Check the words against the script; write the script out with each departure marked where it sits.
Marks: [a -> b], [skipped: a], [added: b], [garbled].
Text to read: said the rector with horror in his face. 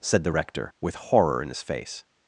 said the rector with horror in his face.